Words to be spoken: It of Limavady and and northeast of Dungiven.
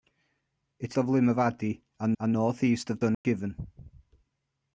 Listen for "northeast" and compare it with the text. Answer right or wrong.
right